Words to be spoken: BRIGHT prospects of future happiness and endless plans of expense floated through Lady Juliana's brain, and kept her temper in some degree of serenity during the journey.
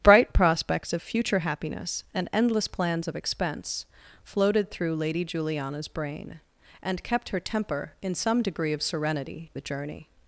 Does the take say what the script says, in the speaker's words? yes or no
no